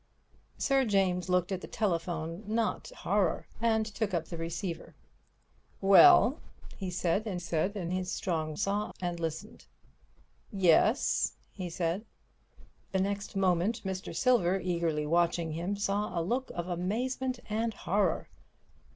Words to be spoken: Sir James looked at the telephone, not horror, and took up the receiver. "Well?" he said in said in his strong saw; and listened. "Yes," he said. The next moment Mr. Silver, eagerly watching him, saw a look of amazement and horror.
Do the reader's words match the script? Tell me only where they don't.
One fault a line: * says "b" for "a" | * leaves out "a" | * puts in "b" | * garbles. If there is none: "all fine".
all fine